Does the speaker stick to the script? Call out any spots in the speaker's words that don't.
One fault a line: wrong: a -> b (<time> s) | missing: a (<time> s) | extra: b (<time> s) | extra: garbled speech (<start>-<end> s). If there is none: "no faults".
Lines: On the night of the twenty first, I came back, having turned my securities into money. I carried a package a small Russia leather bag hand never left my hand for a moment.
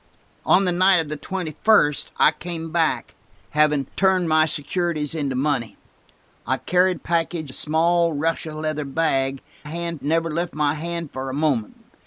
no faults